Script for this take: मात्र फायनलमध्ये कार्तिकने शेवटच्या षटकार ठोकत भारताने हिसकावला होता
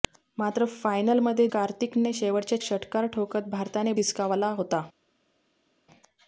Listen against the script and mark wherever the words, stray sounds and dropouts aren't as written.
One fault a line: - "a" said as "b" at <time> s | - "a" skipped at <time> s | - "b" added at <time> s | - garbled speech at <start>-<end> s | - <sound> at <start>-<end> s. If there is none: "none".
none